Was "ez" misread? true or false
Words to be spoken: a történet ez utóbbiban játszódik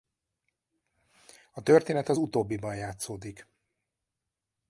true